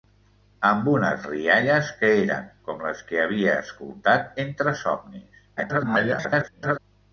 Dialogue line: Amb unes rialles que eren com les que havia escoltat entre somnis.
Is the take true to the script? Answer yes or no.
no